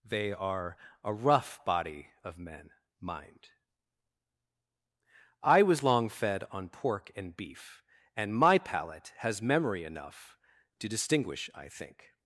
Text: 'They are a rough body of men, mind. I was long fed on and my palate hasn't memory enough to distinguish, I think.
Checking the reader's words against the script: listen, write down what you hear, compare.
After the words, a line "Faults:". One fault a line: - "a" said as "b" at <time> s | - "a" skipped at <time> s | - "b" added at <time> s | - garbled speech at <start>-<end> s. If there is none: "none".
'They are a rough body of men, mind. I was long fed on pork and beef, and my palate has memory enough to distinguish, I think.
Faults:
- "pork" added at 6.7 s
- "beef and" added at 7.3 s
- "hasn't" said as "has" at 9.2 s